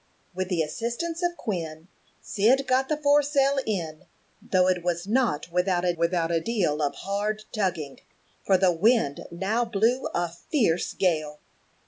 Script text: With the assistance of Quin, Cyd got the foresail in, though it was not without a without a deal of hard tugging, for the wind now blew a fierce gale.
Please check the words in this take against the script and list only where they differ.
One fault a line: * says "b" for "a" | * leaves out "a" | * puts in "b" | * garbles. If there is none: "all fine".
all fine